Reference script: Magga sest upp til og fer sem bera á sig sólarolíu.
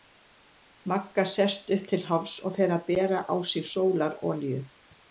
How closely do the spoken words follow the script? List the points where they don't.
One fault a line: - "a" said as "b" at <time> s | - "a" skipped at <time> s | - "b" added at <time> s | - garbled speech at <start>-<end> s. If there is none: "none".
- "hálfs" added at 2.1 s
- "sem" said as "að" at 2.8 s